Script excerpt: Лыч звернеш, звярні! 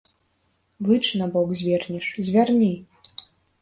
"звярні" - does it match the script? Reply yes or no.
yes